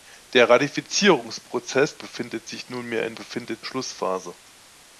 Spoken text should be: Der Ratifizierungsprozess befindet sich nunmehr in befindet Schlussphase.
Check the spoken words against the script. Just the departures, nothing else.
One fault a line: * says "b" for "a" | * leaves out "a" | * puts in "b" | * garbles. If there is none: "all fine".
all fine